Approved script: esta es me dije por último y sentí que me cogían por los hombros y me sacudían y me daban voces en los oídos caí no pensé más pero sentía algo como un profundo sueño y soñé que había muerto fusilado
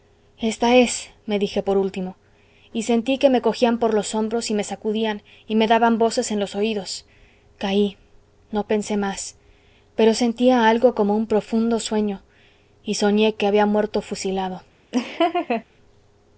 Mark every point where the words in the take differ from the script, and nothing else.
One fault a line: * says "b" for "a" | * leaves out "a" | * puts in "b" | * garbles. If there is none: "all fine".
all fine